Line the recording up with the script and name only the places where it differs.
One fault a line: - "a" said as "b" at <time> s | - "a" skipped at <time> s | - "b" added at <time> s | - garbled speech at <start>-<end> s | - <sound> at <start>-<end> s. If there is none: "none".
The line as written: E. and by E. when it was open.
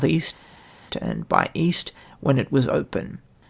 none